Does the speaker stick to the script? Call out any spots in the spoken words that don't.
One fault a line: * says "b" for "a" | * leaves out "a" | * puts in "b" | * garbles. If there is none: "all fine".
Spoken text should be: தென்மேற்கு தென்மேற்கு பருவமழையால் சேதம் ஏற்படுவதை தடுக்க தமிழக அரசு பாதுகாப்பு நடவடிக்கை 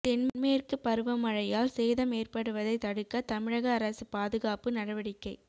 * leaves out "தென்மேற்கு"